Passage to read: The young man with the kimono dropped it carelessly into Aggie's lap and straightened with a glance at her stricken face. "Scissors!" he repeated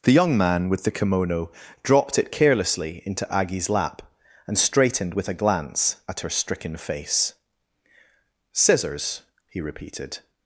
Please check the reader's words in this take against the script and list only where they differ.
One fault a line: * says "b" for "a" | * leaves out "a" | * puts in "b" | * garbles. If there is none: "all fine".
all fine